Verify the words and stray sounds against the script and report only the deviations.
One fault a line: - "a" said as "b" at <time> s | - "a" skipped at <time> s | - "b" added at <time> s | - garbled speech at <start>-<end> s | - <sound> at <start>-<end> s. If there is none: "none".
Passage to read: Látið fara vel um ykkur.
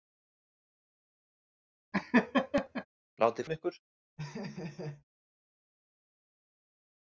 - laugh at 1.9-2.9 s
- "fara vel" skipped at 3.5 s
- laugh at 4.2-5.0 s